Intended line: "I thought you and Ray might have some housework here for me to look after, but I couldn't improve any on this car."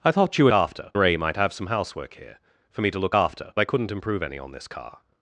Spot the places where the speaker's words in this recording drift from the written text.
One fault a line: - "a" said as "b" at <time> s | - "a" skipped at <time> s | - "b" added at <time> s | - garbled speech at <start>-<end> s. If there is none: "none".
- "and" said as "after" at 0.5 s
- "but" skipped at 3.5 s